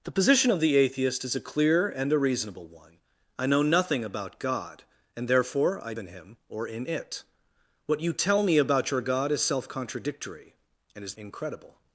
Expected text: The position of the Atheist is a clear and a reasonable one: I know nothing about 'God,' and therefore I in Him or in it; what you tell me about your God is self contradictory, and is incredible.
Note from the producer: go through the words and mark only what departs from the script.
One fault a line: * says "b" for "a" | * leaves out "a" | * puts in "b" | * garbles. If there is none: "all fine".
all fine